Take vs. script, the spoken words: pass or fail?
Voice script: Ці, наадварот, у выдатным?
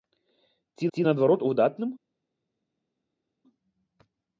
fail